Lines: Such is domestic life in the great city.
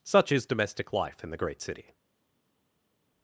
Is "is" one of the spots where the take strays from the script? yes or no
no